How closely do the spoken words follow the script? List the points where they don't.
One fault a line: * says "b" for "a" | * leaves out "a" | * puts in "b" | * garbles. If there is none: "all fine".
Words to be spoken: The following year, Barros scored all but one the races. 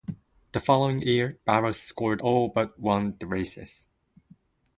all fine